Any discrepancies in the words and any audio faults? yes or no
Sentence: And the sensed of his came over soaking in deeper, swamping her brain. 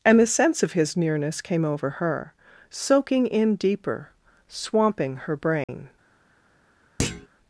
yes